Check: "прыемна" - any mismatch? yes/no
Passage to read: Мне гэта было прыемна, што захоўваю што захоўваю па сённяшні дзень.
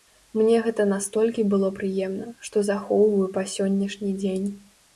no